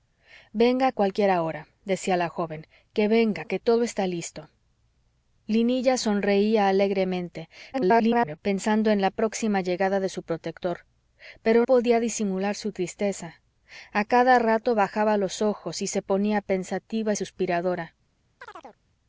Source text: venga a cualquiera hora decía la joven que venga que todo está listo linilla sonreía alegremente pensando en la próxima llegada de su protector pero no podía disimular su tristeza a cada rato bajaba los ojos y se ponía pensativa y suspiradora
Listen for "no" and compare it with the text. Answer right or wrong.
wrong